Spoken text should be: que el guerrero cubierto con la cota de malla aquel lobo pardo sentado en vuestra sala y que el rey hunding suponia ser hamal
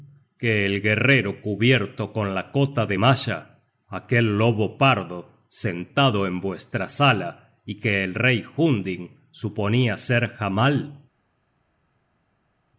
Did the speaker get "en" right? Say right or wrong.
right